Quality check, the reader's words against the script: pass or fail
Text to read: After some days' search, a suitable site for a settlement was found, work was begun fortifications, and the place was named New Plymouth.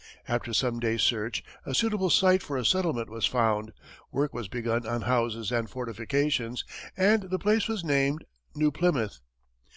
fail